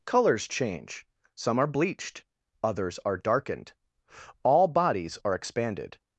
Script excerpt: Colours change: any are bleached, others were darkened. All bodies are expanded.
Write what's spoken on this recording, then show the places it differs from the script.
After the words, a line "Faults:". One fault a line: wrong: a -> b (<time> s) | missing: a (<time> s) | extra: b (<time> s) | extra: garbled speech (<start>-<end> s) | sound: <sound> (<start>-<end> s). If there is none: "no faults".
Colours change: some are bleached, others are darkened. All bodies are expanded.
Faults:
wrong: any -> some (1.4 s)
wrong: were -> are (3.0 s)